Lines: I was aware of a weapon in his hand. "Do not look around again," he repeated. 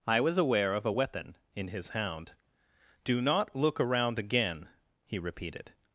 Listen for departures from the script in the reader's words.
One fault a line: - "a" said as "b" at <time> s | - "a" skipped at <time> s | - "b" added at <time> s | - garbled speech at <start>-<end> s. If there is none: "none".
- "hand" said as "hound" at 1.9 s